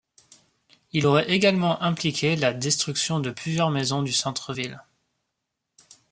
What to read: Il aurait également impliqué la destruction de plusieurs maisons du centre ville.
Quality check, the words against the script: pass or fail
pass